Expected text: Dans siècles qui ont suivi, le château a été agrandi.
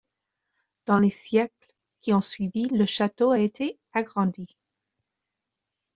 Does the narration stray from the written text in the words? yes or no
yes